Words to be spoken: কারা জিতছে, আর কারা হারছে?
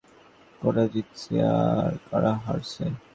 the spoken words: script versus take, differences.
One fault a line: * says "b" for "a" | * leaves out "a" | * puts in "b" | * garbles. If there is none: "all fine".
all fine